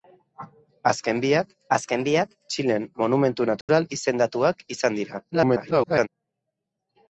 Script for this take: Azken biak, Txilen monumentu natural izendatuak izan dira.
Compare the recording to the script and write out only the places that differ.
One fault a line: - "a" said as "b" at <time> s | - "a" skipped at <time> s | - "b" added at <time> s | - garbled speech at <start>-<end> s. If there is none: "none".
- "azken biak" added at 1.8 s
- garbled speech at 5.3-6.1 s